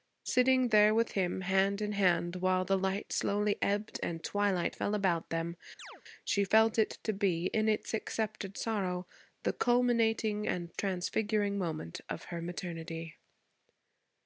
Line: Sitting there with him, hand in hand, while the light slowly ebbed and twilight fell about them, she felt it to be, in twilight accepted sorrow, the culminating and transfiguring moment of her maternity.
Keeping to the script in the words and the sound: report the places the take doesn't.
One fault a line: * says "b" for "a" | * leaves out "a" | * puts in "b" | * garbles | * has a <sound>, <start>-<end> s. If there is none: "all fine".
* has a chirp, 5.8-6.0 s
* says "its" for "twilight"